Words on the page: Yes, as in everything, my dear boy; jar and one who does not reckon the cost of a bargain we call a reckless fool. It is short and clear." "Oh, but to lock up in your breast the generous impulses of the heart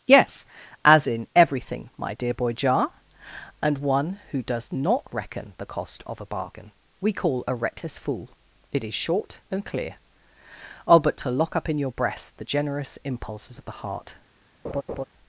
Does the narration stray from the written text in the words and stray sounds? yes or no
yes